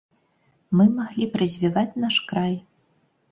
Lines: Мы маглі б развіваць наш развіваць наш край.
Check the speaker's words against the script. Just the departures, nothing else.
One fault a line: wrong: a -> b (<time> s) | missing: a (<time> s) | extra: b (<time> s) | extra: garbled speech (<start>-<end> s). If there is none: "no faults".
missing: развіваць наш (2.2 s)